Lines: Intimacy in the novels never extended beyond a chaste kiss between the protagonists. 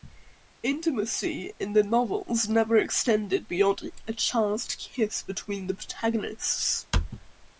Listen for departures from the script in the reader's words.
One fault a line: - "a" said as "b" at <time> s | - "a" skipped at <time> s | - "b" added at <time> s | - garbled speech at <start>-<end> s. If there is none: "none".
none